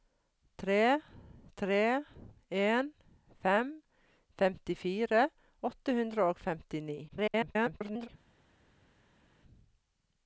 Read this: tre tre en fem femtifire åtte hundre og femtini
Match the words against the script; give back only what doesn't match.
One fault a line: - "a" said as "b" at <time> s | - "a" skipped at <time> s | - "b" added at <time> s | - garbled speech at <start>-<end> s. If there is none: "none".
- garbled speech at 7.1-8.1 s